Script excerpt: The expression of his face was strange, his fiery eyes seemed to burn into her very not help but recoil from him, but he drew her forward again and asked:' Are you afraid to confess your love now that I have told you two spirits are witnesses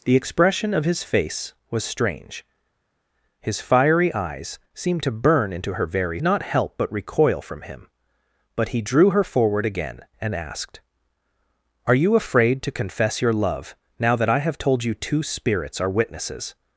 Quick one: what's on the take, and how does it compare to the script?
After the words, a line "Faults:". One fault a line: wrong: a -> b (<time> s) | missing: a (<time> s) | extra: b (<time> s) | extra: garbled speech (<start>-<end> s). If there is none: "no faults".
The expression of his face was strange, his fiery eyes seemed to burn into her very not help but recoil from him, but he drew her forward again and asked:' Are you afraid to confess your love now that I have told you two spirits are witnesses
Faults:
no faults